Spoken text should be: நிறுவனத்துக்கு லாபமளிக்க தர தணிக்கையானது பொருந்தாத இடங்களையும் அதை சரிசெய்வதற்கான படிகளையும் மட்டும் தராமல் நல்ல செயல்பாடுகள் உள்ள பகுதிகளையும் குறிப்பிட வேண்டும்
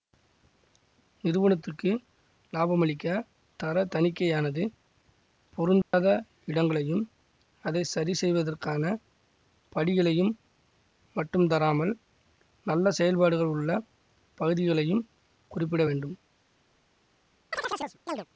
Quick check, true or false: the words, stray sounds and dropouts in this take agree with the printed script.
false